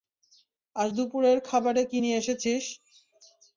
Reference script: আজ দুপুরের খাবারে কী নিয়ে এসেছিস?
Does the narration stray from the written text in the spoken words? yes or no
no